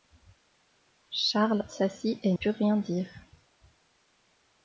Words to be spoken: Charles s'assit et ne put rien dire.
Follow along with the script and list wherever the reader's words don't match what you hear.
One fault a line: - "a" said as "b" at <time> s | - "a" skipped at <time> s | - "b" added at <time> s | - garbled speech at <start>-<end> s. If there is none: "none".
- "ne" skipped at 2.3 s